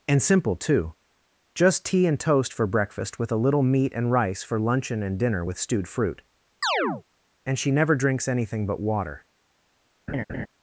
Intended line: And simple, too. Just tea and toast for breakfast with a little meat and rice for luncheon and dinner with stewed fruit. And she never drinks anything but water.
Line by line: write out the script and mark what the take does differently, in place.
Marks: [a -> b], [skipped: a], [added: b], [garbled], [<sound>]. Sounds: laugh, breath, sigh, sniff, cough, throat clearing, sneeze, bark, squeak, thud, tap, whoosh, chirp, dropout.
And simple, too. Just tea and toast for breakfast with a little meat and rice for luncheon and dinner with stewed fruit. [chirp] And she never drinks anything but water. [laugh]